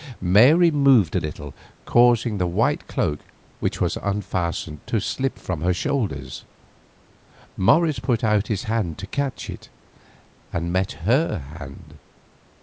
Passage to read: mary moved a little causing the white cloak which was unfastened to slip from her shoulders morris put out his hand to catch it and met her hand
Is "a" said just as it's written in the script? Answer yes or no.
yes